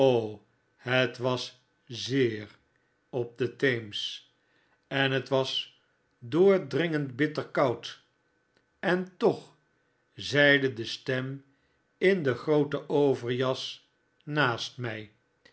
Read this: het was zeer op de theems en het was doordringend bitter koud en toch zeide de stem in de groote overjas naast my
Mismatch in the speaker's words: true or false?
false